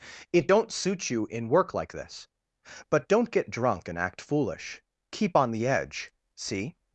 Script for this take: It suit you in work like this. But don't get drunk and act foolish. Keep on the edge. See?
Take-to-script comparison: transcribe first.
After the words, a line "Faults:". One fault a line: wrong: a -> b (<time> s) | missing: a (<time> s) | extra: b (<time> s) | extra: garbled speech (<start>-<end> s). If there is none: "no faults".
It don't suit you in work like this. But don't get drunk and act foolish. Keep on the edge. See?
Faults:
extra: don't (0.5 s)